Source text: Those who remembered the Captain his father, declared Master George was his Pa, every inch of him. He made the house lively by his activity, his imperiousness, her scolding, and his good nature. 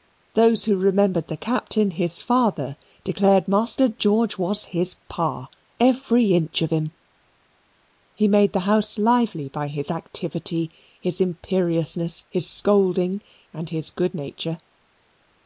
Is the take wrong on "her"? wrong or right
wrong